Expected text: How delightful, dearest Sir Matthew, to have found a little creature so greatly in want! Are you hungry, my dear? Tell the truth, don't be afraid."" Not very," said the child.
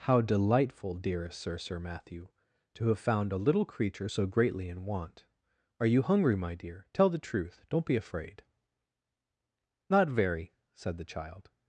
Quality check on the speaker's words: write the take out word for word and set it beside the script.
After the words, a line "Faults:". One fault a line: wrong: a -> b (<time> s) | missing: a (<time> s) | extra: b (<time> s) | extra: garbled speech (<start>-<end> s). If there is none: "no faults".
How delightful, dearest Sir Sir Matthew, to have found a little creature so greatly in want! Are you hungry, my dear? Tell the truth, don't be afraid."" Not very," said the child.
Faults:
extra: Sir (1.6 s)